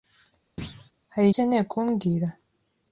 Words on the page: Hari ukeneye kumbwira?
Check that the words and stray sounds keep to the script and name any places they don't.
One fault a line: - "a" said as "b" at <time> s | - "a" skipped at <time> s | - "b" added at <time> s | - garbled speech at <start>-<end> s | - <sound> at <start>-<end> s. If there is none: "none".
- thud at 0.6-0.9 s